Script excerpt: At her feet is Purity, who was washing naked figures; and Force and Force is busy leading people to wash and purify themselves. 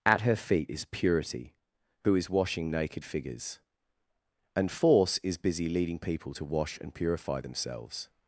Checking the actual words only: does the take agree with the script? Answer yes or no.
no